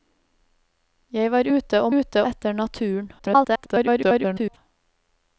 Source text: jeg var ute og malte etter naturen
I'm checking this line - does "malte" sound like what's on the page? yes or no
no